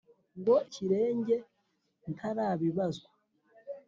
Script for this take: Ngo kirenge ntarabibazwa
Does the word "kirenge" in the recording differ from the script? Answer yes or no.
no